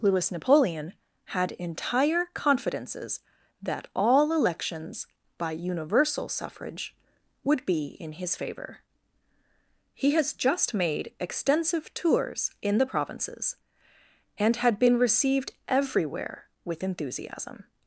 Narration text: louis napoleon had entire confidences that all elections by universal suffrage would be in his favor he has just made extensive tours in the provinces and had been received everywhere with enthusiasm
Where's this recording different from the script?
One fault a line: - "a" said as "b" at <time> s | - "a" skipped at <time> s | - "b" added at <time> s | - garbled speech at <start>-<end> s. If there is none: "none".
none